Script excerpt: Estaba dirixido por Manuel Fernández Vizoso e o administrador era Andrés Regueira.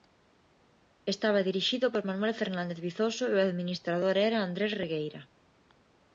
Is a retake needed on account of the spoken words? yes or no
no